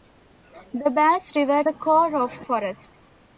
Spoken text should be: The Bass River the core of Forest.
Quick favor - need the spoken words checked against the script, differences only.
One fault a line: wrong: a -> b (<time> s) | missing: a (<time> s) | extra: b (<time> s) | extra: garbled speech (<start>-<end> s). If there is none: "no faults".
no faults